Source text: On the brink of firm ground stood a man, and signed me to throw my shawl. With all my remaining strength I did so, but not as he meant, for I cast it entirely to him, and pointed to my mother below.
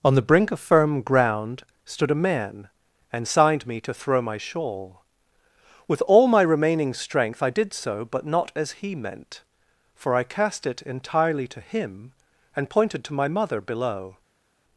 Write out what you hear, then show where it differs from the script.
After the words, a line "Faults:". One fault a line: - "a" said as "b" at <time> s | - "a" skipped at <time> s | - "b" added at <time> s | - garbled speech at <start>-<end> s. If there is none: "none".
On the brink of firm ground stood a man, and signed me to throw my shawl. With all my remaining strength I did so, but not as he meant, for I cast it entirely to him, and pointed to my mother below.
Faults:
none